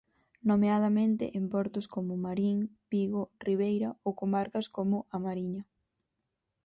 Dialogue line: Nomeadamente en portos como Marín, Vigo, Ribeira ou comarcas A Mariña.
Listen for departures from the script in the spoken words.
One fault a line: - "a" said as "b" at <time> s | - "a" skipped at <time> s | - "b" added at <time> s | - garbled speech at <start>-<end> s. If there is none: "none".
- "como" added at 4.8 s